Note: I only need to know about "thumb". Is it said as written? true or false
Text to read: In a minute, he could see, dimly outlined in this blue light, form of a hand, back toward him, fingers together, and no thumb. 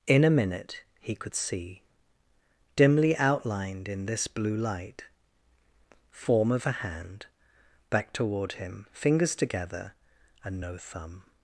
true